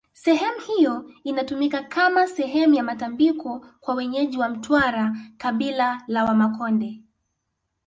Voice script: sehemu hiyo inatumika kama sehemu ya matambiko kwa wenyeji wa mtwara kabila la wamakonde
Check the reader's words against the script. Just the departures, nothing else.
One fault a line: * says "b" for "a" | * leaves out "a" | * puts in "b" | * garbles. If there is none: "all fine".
all fine